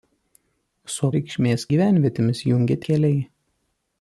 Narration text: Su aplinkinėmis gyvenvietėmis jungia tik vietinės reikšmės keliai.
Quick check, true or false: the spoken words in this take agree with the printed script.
false